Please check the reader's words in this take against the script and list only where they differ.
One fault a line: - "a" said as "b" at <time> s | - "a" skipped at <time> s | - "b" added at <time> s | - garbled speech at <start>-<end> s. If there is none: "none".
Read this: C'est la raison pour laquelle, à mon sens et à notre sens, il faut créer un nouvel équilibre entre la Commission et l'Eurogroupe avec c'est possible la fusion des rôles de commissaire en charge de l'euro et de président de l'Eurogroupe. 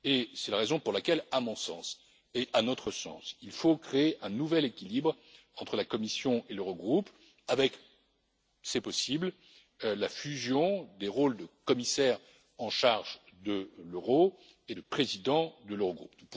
none